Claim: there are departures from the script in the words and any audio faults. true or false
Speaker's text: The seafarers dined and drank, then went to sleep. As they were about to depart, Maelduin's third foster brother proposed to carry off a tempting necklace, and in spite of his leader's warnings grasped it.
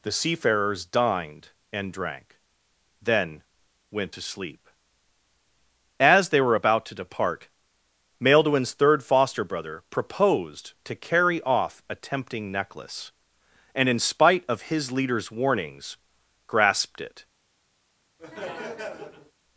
true